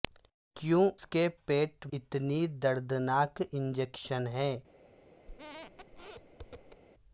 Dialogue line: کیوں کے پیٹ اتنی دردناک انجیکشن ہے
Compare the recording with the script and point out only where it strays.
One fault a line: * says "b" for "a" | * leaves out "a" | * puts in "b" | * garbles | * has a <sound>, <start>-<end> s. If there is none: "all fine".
* has a squeak, 5.3-6.8 s